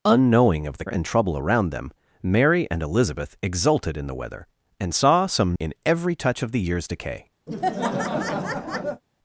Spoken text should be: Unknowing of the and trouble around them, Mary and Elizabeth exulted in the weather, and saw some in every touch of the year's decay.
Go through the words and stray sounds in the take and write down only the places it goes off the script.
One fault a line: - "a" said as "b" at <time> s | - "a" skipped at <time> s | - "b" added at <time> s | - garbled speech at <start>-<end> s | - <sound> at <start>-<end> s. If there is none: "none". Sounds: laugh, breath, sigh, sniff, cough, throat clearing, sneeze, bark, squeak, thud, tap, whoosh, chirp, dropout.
- laugh at 7.5-9.0 s